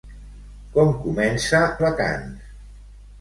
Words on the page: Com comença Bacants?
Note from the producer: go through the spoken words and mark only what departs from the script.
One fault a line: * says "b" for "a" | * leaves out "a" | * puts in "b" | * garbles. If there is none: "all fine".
all fine